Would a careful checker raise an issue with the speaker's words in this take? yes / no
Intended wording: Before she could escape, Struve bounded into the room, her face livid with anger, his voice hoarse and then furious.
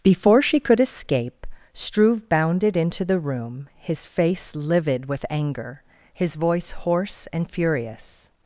yes